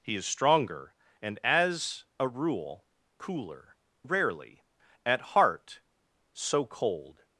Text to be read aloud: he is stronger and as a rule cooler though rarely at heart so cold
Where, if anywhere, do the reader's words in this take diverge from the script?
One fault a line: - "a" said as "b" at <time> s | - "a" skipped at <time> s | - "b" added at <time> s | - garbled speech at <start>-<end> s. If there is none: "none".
- "though" skipped at 3.8 s